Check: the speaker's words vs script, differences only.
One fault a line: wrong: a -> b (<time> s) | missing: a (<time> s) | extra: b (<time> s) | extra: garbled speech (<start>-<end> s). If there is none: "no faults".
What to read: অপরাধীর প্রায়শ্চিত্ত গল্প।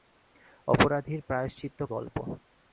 no faults